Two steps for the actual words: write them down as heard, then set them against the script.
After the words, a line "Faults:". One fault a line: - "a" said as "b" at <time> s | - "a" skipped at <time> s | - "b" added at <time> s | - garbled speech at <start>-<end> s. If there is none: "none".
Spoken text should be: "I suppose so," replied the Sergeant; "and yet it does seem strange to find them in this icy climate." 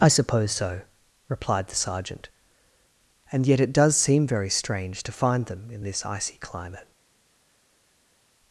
"I suppose so," replied the Sergeant; "and yet it does seem very strange to find them in this icy climate."
Faults:
- "very" added at 4.2 s